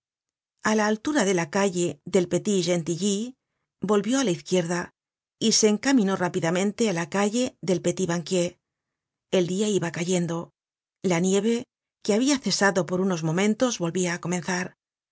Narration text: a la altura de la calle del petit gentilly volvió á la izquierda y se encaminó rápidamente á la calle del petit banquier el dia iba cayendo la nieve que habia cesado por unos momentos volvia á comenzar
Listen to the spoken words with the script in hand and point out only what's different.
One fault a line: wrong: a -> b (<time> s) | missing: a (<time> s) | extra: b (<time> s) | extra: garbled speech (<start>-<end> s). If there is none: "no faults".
no faults